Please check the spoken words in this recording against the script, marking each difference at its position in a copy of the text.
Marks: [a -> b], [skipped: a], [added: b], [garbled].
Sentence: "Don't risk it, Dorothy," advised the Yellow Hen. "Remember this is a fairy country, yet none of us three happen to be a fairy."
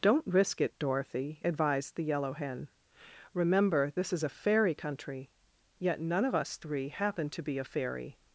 "Don't risk it, Dorothy," advised the Yellow Hen. "Remember this is a fairy country, yet none of us three happen to be a fairy."